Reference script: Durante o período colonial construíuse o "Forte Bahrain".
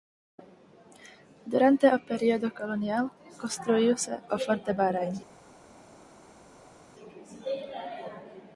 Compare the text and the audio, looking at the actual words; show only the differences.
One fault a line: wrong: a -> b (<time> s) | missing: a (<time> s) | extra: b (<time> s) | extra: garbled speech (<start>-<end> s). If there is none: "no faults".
no faults